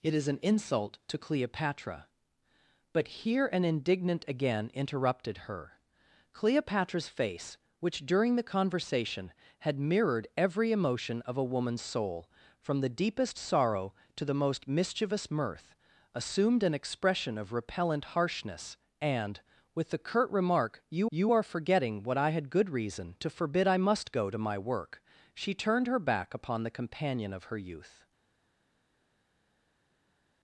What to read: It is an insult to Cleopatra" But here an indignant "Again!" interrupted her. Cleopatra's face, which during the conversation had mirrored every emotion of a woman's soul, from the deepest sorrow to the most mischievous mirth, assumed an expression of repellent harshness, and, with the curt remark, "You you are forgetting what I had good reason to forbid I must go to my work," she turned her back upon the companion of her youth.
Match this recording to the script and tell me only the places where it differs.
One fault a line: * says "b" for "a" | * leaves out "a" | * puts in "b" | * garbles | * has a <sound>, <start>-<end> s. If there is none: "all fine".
all fine